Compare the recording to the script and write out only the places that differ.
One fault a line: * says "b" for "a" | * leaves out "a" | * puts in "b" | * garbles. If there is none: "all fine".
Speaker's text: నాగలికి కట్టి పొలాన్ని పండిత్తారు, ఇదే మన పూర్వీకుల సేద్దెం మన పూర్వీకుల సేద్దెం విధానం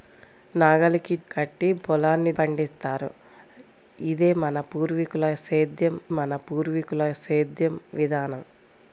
all fine